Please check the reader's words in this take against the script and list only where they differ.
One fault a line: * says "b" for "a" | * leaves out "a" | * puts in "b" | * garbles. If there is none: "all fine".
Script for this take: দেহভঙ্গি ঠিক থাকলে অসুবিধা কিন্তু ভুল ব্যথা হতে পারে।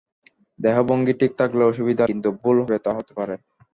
all fine